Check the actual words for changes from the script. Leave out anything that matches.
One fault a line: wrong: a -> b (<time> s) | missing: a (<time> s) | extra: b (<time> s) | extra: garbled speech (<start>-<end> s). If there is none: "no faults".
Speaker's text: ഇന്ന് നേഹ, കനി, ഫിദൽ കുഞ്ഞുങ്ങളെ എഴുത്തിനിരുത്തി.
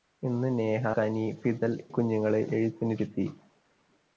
no faults